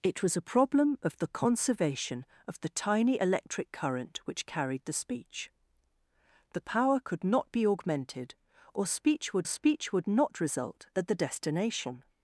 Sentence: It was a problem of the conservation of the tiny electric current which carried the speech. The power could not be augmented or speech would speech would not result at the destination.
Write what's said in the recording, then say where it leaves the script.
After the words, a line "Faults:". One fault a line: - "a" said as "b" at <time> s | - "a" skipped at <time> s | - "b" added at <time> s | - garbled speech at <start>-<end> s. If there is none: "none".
It was a problem of the conservation of the tiny electric current which carried the speech. The power could not be augmented or speech would speech would not result at the destination.
Faults:
none